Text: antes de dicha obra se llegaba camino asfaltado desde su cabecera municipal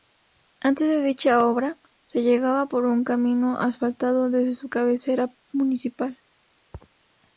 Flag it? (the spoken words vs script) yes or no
yes